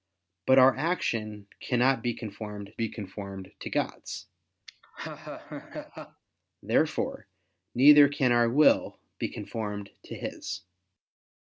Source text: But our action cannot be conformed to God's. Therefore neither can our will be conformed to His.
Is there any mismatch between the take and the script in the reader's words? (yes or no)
yes